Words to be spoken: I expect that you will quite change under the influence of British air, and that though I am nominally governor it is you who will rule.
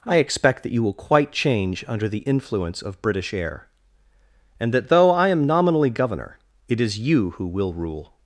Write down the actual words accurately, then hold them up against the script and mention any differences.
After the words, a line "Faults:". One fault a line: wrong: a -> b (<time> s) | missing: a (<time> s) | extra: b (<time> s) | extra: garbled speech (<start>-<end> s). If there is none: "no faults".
I expect that you will quite change under the influence of British air, and that though I am nominally governor it is you who will rule.
Faults:
no faults